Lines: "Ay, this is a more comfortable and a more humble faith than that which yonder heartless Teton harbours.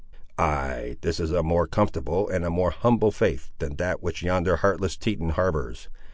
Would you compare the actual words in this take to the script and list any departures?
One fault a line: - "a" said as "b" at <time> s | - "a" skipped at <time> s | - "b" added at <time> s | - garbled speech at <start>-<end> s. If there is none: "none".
none